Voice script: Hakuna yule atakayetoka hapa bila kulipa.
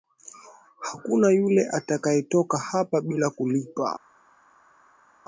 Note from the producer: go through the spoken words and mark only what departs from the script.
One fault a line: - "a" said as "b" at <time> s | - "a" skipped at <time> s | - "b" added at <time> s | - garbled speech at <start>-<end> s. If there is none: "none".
none